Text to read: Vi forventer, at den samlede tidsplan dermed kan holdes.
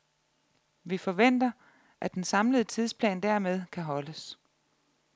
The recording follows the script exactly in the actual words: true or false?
true